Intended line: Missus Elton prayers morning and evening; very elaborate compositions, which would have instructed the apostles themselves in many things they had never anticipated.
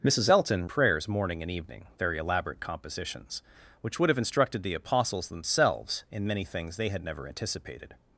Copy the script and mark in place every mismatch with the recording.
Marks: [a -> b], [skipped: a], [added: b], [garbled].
Missus Elton prayers morning and evening; very elaborate compositions, which would have instructed the apostles themselves in many things they had never anticipated.